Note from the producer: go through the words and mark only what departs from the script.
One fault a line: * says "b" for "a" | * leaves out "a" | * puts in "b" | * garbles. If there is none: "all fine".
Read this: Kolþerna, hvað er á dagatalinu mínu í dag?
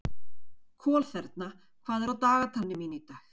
all fine